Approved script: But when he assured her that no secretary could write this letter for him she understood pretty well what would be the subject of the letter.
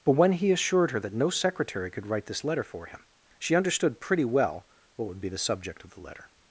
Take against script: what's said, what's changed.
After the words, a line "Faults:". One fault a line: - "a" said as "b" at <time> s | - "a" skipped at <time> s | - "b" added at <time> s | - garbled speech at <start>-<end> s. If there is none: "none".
But when he assured her that no secretary could write this letter for him she understood pretty well what would be the subject of the letter.
Faults:
none